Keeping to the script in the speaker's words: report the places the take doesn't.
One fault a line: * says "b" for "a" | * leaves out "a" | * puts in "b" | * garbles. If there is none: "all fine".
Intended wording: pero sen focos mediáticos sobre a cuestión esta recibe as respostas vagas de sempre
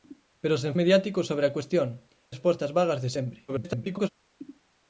* leaves out "focos"
* leaves out "esta recibe as"
* garbles